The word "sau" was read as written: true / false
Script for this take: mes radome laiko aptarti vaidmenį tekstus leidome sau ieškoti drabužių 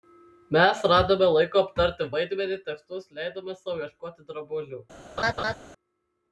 true